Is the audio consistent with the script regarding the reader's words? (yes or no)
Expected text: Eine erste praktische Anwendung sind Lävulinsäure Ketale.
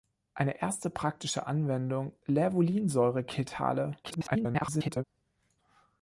no